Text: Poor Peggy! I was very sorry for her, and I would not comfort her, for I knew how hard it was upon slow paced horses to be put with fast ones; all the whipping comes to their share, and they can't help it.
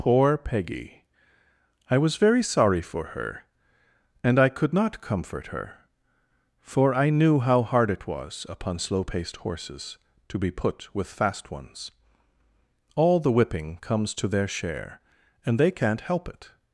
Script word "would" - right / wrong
wrong